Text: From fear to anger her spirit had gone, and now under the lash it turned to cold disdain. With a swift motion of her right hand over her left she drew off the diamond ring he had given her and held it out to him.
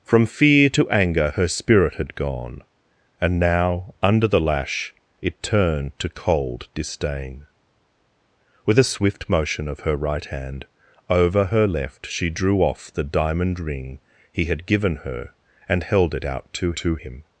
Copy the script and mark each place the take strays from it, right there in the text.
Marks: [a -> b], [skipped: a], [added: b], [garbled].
From fear to anger her spirit had gone, and now under the lash it turned to cold disdain. With a swift motion of her right hand over her left she drew off the diamond ring he had given her and held it out to [added: to] him.